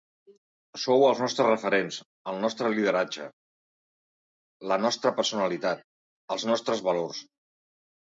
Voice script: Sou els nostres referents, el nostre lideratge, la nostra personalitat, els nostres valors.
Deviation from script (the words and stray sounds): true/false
false